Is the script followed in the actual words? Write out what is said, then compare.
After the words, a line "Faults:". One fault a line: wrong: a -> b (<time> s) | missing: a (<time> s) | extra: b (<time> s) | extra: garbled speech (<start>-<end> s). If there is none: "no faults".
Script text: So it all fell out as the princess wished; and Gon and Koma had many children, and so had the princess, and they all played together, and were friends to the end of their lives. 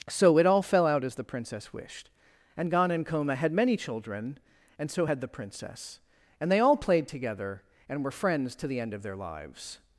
So it all fell out as the princess wished; and Gon and Koma had many children, and so had the princess, and they all played together, and were friends to the end of their lives.
Faults:
no faults